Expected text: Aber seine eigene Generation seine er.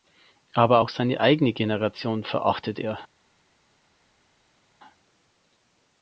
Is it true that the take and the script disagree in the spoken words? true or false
true